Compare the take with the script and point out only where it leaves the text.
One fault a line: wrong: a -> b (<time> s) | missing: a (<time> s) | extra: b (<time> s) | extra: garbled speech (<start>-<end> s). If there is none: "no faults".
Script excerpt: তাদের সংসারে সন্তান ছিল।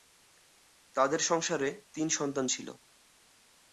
extra: তিন (1.9 s)